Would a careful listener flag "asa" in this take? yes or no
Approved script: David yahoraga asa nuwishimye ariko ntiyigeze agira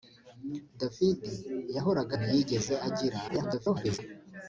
yes